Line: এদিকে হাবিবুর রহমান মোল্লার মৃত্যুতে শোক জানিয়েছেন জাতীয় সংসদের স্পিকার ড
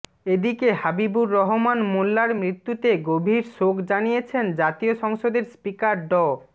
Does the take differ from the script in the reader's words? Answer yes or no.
yes